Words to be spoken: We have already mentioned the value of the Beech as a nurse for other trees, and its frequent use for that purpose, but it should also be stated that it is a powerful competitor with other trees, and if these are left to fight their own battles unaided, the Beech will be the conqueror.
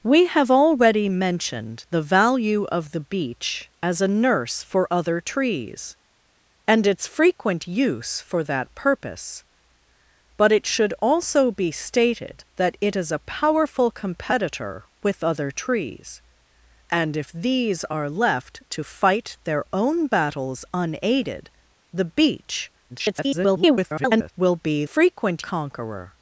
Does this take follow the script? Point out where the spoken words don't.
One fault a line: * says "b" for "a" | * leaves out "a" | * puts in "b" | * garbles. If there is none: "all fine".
* garbles
* says "frequent" for "the"